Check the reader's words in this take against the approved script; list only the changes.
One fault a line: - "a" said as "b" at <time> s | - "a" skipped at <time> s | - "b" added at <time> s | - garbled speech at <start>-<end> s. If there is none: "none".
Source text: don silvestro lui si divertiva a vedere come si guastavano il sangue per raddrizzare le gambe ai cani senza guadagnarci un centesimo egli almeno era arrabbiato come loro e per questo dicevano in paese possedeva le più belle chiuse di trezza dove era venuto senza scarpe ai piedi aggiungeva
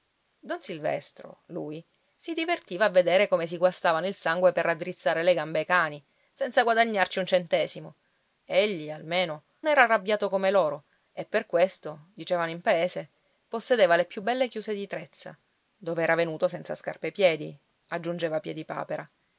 none